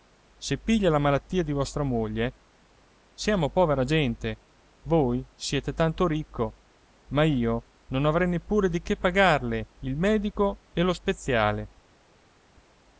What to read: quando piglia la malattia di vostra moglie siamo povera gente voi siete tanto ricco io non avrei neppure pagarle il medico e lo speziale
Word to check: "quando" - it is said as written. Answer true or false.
false